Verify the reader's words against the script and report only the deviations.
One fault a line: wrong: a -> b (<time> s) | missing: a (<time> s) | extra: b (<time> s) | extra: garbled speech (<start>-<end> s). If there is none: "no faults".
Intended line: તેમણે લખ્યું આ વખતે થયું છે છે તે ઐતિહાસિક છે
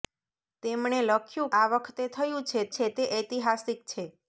no faults